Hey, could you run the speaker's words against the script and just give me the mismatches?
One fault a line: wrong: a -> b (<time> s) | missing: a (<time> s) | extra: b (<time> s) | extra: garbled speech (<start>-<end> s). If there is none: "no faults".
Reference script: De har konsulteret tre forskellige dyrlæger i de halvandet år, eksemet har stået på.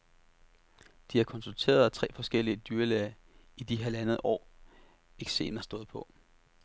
missing: har (5.6 s)